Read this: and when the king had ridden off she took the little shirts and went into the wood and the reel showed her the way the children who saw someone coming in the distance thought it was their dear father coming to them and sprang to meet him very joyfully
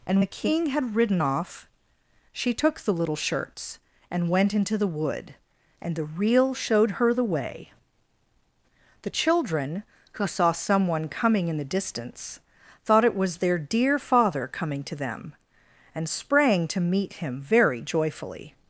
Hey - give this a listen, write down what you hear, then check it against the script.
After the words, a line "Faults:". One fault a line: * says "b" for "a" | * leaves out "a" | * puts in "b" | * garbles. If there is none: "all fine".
and the king had ridden off she took the little shirts and went into the wood and the reel showed her the way the children who saw someone coming in the distance thought it was their dear father coming to them and sprang to meet him very joyfully
Faults:
* leaves out "when"